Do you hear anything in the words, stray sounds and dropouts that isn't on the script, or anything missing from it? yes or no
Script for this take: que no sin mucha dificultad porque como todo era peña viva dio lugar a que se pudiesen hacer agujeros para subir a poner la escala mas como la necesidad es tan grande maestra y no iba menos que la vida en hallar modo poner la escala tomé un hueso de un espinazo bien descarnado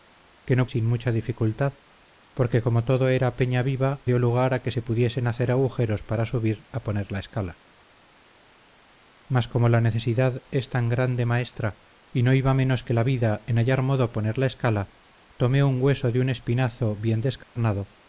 yes